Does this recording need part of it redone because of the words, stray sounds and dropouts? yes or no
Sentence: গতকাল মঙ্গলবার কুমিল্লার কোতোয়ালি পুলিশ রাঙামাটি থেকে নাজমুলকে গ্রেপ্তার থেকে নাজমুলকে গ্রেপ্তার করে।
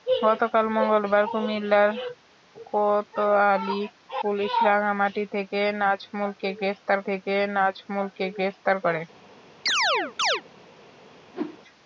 yes